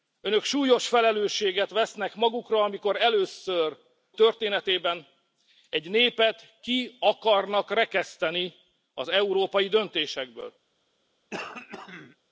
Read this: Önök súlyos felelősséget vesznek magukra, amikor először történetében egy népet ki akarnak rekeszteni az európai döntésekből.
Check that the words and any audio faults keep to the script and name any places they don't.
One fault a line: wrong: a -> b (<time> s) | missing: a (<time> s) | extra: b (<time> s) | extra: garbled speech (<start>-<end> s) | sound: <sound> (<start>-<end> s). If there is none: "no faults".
sound: throat clearing (11.3-12.2 s)